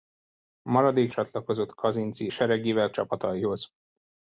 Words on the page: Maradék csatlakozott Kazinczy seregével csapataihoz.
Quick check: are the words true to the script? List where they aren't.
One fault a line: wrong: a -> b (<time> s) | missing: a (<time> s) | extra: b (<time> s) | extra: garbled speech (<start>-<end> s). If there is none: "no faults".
no faults